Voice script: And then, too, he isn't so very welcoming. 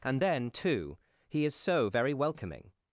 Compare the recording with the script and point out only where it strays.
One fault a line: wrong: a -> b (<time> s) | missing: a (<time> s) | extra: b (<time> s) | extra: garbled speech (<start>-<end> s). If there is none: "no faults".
wrong: isn't -> is (1.4 s)